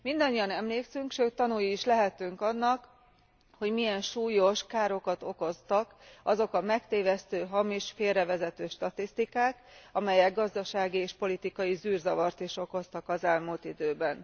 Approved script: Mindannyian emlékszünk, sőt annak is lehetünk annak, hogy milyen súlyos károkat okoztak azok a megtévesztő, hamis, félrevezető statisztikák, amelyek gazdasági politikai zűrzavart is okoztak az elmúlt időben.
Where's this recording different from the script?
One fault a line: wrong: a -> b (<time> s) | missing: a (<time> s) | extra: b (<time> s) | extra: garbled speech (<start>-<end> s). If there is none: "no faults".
wrong: annak -> tanúi (1.3 s)
extra: és (11.0 s)